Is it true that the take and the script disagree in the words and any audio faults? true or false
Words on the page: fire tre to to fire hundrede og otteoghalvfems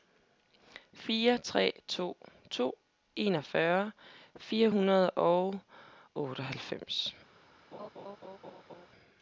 true